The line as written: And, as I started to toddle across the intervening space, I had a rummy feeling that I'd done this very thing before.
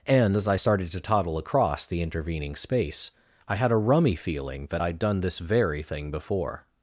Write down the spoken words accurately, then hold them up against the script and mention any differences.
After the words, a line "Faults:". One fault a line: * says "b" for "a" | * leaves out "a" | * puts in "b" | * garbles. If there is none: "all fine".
And, as I started to toddle across the intervening space, I had a rummy feeling that I'd done this very thing before.
Faults:
all fine